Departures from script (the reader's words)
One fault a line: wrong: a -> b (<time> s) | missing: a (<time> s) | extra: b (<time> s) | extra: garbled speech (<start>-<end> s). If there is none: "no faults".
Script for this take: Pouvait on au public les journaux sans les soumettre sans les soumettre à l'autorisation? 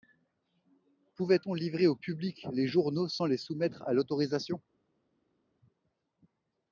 extra: livrer (1.5 s)
missing: sans les soumettre (3.8 s)